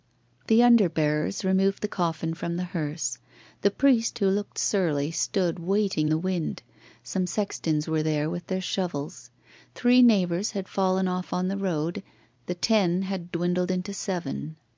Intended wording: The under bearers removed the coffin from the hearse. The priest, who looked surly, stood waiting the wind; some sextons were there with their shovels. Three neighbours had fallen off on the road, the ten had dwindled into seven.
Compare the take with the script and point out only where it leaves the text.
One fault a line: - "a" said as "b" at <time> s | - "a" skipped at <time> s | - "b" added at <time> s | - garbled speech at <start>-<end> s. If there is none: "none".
none